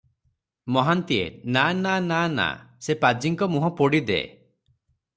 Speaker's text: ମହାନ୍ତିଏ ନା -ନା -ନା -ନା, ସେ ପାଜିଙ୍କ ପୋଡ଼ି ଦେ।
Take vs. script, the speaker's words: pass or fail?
fail